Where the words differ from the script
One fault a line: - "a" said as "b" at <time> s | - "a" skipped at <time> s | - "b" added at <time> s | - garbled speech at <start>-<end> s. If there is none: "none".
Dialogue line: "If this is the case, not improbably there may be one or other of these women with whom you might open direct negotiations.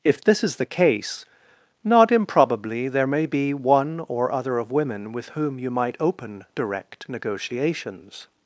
- "these" skipped at 4.7 s